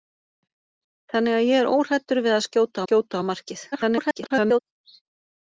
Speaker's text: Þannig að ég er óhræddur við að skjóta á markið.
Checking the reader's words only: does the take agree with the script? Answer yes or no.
no